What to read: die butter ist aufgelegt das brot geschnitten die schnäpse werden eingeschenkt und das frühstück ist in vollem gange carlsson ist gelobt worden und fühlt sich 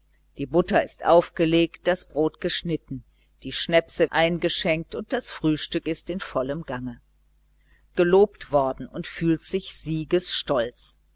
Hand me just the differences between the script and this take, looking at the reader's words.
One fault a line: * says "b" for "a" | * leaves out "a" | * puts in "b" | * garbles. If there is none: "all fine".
* leaves out "werden"
* leaves out "carlsson ist"